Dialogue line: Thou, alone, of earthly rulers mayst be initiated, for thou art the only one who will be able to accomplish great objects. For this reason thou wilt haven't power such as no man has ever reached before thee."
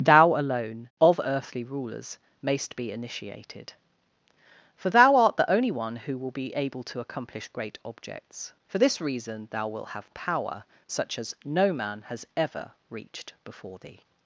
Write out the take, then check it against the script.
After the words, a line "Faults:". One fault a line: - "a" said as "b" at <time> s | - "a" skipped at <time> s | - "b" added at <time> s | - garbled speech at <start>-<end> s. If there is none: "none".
Thou, alone, of earthly rulers mayst be initiated, for thou art the only one who will be able to accomplish great objects. For this reason thou wilt have power such as no man has ever reached before thee."
Faults:
- "haven't" said as "have" at 9.9 s